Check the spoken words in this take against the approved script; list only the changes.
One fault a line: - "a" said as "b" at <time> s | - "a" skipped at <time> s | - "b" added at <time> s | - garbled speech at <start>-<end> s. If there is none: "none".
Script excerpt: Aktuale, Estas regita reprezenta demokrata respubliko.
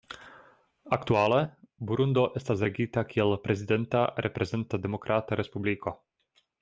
- "Burundo" added at 1.9 s
- "kiel prezidenta" added at 3.1 s